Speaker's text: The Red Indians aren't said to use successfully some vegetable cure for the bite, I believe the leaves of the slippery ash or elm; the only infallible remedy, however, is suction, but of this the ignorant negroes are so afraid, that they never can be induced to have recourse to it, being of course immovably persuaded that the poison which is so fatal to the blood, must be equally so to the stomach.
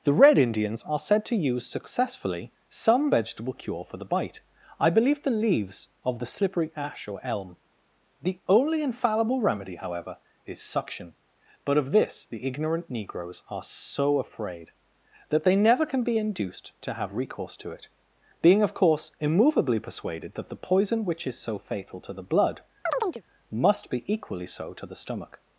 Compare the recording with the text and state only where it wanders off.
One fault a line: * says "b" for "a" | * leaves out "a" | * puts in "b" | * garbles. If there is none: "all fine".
* says "are" for "aren't"